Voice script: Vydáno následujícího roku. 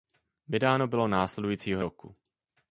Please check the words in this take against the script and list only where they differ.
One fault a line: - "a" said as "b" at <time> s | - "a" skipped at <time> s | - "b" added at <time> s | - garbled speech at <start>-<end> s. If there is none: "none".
- "bylo" added at 0.9 s